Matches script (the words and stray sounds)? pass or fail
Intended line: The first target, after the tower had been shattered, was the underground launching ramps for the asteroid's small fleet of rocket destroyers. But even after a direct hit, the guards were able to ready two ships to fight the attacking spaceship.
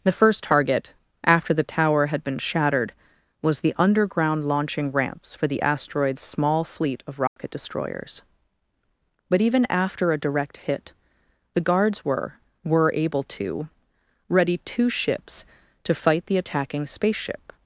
fail